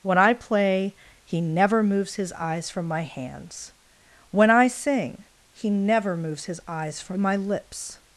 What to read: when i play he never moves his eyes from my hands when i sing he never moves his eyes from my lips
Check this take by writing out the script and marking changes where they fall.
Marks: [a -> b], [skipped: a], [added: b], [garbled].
when i play he never moves his eyes from my hands when i sing he never moves his eyes from my lips